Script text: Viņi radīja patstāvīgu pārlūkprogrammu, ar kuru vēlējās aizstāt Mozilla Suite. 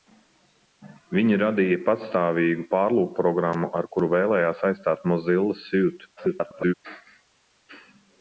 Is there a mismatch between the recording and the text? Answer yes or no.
yes